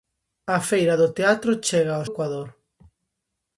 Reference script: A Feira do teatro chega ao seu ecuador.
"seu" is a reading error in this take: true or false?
true